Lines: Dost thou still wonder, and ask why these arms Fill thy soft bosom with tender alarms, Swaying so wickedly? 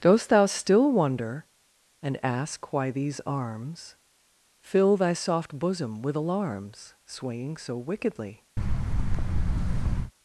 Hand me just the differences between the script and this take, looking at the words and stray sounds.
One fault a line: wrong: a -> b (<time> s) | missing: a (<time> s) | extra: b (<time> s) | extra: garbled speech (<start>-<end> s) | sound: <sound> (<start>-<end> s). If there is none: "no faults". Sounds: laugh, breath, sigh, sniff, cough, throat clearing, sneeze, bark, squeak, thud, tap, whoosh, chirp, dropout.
missing: tender (6.2 s)
sound: thud (8.6-10.1 s)